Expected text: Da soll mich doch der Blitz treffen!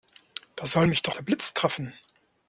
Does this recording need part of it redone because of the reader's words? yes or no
no